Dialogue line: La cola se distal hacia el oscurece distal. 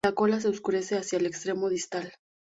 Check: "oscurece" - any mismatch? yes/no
yes